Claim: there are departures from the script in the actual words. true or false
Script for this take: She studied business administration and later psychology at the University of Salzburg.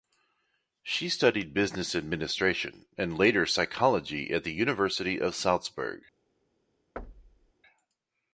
false